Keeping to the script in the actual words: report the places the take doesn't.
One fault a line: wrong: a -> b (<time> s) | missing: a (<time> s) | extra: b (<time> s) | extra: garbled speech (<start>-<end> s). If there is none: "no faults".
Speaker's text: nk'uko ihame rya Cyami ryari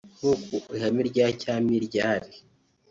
no faults